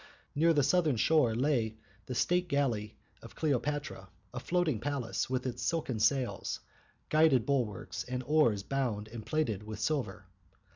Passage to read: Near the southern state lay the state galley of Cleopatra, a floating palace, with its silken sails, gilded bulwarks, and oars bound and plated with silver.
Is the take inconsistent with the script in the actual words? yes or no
yes